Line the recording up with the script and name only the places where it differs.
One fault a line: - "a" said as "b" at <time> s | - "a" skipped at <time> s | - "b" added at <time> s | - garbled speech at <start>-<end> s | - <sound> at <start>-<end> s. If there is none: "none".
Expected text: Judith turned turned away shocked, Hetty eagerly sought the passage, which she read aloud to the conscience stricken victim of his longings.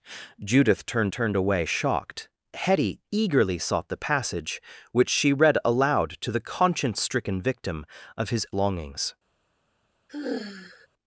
- sigh at 10.1-10.9 s